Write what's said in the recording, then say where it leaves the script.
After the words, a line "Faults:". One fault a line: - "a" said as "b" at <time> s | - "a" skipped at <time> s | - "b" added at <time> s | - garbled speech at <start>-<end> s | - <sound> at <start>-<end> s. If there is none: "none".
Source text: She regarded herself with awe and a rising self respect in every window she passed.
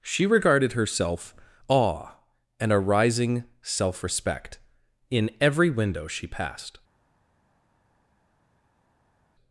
She regarded herself awe and a rising self respect in every window she passed.
Faults:
- "with" skipped at 1.4 s